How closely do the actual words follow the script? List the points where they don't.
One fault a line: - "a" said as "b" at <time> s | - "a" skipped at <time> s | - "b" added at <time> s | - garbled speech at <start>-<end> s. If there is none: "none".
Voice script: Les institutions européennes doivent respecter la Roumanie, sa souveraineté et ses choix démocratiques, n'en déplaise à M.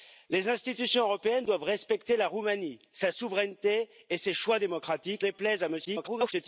- "n'en" skipped at 5.2 s
- garbled speech at 5.8-6.3 s